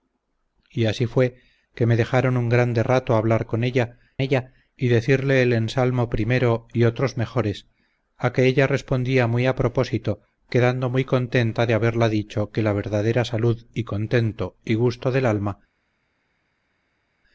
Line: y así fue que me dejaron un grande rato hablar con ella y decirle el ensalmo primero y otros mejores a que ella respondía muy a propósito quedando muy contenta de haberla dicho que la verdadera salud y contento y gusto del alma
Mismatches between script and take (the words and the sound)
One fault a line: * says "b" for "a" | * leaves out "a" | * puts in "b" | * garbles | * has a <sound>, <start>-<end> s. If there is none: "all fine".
* puts in "ella"